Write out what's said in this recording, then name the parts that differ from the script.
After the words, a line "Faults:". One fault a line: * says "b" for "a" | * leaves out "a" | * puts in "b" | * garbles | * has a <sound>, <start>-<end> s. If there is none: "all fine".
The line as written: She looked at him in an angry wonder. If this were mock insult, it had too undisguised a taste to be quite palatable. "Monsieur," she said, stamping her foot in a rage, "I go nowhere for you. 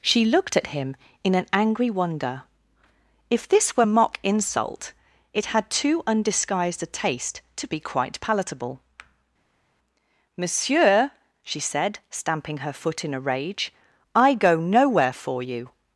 She looked at him in an angry wonder. If this were mock insult, it had too undisguised a taste to be quite palatable. "Monsieur," she said, stamping her foot in a rage, "I go nowhere for you.
Faults:
all fine